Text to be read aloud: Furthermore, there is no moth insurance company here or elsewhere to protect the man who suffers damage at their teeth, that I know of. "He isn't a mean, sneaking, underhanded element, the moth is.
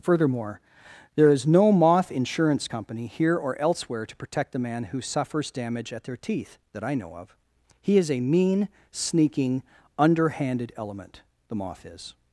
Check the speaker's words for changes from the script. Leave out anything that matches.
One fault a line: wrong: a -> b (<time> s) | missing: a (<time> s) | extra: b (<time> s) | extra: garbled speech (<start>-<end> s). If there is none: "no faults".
wrong: isn't -> is (8.0 s)